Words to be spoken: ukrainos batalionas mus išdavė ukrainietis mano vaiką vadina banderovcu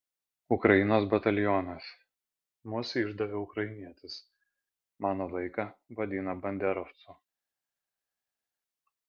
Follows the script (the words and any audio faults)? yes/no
yes